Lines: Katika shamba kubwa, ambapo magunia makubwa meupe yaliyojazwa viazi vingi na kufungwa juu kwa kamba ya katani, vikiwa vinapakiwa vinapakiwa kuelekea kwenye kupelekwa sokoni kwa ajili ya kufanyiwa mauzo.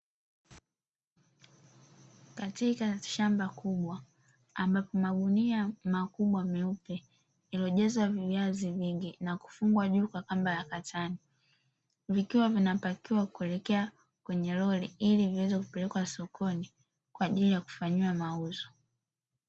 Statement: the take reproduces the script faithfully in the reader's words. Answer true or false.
false